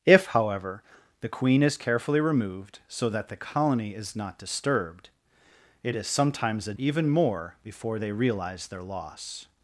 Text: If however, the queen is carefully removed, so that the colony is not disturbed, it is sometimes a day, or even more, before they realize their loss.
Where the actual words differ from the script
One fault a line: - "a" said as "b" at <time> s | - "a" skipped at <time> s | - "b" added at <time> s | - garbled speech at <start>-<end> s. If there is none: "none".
- "day or" skipped at 6.7 s